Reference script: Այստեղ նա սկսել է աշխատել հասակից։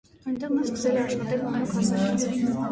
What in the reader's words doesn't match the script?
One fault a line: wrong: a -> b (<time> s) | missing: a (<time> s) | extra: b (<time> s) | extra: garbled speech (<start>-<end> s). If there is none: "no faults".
wrong: Այստեղ -> Այնտեղ (0.3 s)
extra: մանուկ (1.5 s)